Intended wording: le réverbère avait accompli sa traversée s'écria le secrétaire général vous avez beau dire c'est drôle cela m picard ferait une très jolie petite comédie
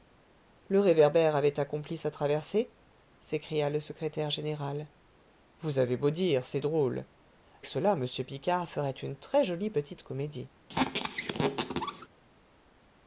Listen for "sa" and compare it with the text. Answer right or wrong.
right